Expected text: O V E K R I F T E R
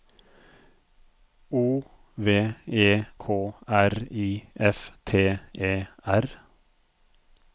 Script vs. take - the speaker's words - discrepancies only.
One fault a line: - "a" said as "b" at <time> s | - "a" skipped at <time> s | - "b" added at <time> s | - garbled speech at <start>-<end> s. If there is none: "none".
none